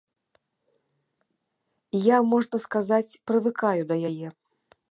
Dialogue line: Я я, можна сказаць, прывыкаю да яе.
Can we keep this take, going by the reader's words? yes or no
no